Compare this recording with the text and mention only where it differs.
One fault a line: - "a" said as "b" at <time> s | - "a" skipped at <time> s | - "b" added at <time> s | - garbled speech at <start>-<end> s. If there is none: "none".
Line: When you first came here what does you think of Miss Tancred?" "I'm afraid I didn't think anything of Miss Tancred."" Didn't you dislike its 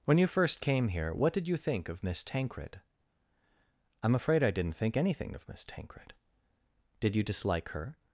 - "does" said as "did" at 1.3 s
- "Didn't" said as "Did" at 7.0 s
- "its" said as "her" at 7.7 s